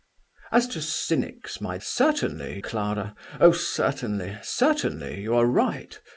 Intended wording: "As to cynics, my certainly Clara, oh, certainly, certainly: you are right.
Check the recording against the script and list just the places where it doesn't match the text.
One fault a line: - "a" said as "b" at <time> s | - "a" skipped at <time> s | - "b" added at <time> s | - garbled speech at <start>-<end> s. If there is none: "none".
none